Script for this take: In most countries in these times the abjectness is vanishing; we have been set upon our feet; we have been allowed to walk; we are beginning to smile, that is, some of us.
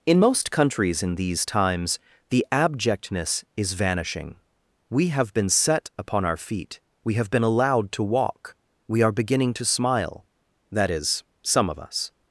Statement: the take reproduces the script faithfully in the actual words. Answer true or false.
true